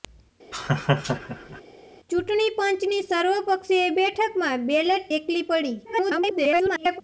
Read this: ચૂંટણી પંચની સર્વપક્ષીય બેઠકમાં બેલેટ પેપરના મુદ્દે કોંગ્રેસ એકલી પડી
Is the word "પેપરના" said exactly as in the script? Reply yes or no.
no